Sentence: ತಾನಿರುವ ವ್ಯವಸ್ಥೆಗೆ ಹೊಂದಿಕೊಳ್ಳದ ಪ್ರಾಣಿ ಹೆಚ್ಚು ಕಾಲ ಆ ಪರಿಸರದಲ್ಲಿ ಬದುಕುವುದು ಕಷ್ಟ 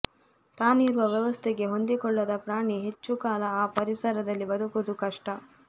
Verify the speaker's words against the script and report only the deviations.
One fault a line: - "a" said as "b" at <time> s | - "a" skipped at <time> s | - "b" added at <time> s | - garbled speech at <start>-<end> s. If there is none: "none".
none